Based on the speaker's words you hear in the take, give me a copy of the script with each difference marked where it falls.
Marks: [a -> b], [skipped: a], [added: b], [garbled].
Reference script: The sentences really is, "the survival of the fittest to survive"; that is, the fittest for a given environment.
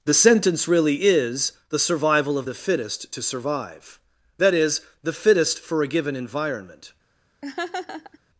The [sentences -> sentence] really is, "the survival of the fittest to survive"; that is, the fittest for a given environment.